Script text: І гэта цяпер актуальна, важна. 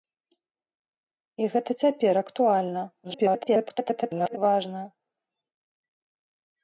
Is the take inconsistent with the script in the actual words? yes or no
yes